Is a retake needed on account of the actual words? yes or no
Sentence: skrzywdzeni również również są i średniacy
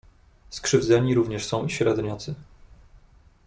yes